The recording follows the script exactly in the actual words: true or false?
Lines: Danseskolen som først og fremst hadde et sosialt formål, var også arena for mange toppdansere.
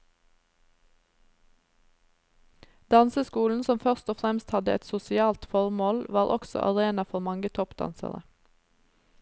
true